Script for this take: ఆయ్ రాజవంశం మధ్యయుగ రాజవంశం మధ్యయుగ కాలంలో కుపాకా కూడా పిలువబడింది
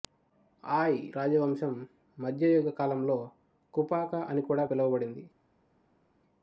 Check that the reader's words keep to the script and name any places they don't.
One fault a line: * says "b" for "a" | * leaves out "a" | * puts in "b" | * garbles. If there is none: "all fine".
* leaves out "రాజవంశం మధ్యయుగ"
* puts in "అని"